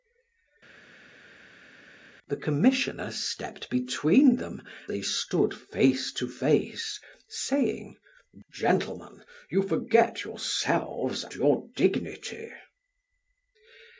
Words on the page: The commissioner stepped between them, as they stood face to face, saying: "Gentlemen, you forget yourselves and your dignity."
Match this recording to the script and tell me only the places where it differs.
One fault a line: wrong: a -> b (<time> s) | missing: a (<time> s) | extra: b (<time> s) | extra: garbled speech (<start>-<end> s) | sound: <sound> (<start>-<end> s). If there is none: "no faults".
missing: as (4.6 s)
missing: and (11.2 s)